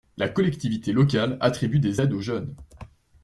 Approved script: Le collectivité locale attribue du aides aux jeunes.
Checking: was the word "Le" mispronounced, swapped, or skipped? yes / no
yes